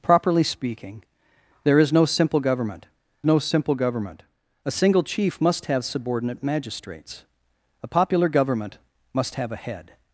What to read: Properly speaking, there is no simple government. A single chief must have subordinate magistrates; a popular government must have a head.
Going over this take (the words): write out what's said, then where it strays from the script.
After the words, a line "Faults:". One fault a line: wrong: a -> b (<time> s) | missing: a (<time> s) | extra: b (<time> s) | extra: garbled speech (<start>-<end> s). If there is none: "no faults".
Properly speaking, there is no simple government no simple government. A single chief must have subordinate magistrates; a popular government must have a head.
Faults:
extra: no simple government (3.3 s)